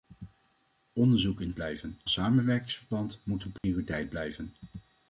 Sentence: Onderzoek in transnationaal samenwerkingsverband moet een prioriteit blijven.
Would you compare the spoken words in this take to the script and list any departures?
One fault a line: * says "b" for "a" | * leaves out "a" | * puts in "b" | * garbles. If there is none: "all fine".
* says "blijven" for "transnationaal"